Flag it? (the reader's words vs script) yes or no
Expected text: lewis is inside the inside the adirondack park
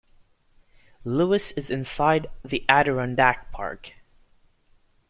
yes